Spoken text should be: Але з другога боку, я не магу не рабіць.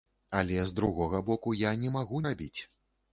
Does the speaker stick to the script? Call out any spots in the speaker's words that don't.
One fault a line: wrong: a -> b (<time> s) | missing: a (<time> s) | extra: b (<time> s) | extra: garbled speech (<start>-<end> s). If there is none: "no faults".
missing: не (2.2 s)